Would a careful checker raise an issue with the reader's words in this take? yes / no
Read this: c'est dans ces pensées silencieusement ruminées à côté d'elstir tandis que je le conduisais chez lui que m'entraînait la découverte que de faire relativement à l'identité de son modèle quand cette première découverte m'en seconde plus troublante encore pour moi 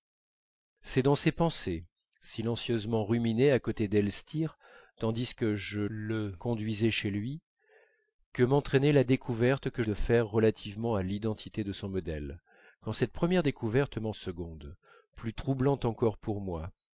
no